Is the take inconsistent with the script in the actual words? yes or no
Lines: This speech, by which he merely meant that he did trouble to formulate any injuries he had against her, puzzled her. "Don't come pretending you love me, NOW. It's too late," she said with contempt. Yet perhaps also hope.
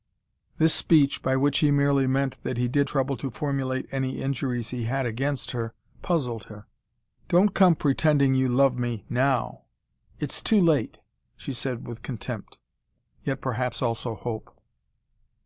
no